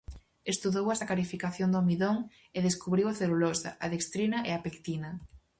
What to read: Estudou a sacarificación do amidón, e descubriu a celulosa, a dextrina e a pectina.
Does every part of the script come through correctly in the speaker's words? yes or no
yes